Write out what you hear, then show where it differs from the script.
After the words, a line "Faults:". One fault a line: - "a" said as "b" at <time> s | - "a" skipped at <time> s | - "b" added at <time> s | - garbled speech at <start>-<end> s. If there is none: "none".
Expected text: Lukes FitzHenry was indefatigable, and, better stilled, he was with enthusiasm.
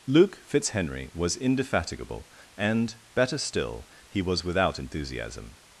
Luke FitzHenry was indefatigable, and, better still, he was without enthusiasm.
Faults:
- "Lukes" said as "Luke" at 0.1 s
- "stilled" said as "still" at 3.4 s
- "with" said as "without" at 4.4 s